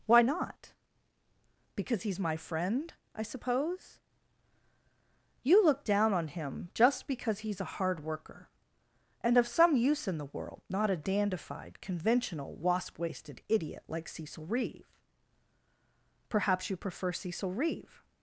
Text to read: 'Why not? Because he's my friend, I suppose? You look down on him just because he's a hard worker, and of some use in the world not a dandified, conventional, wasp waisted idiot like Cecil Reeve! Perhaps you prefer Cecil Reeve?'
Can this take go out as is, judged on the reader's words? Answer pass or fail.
pass